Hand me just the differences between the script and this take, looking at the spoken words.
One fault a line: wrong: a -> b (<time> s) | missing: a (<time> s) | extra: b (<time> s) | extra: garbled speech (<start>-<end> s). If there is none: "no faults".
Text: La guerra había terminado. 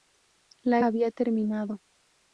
missing: guerra (0.8 s)